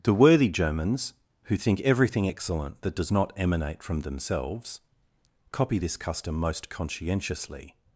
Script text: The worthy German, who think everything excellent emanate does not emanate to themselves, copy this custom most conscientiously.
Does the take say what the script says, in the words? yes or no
no